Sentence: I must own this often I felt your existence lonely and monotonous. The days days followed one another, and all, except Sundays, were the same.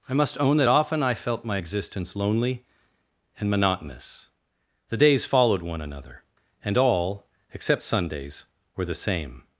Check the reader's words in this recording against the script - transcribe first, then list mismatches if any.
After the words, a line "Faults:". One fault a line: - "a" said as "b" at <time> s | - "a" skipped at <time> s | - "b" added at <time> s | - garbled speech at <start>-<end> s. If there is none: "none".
I must own that often I felt my existence lonely and monotonous. The days followed one another, and all, except Sundays, were the same.
Faults:
- "this" said as "that" at 0.6 s
- "your" said as "my" at 1.4 s
- "days" skipped at 5.3 s